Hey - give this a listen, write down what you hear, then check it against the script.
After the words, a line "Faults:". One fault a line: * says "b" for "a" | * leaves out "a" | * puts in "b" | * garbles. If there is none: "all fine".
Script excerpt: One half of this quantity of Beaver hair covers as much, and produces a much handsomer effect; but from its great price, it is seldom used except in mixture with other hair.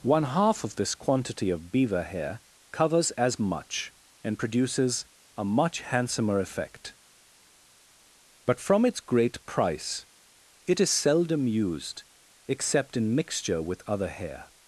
One half of this quantity of Beaver hair covers as much, and produces a much handsomer effect; but from its great price, it is seldom used except in mixture with other hair.
Faults:
all fine